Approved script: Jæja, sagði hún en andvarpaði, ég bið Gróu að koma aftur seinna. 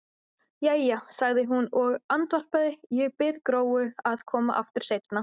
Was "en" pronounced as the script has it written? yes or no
no